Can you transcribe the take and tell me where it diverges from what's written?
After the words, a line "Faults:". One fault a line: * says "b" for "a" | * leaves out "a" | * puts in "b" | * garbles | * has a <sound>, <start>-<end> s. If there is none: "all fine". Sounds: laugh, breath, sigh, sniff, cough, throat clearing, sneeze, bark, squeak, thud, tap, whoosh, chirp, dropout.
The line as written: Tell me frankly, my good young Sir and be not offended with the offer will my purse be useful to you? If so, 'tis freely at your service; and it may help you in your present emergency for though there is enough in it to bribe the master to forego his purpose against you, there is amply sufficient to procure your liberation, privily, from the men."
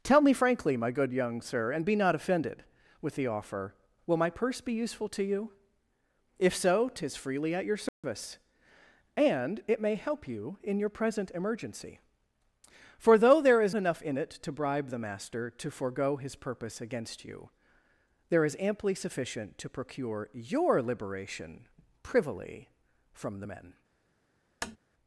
Tell me frankly, my good young Sir and be not offended with the offer will my purse be useful to you? If so, 'tis freely at your service; and it may help you in your present emergency for though there is enough in it to bribe the master to forego his purpose against you, there is amply sufficient to procure your liberation, privily, from the men."
Faults:
* has a dropout, 7.9-8.0 s
* has a tap, 24.6-24.8 s